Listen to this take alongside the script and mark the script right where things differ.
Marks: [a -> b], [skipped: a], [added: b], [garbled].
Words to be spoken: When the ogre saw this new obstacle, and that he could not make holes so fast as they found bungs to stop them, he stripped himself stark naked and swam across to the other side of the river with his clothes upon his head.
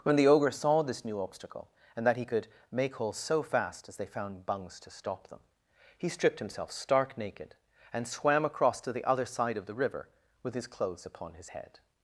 When the ogre saw this new obstacle, and that he could [skipped: not] make holes so fast as they found bungs to stop them, he stripped himself stark naked and swam across to the other side of the river with his clothes upon his head.